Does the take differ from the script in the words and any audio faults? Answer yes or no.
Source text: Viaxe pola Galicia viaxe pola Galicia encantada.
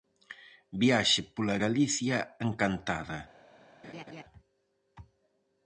yes